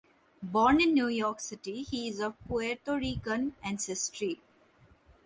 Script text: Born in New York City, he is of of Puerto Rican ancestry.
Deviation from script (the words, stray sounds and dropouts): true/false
true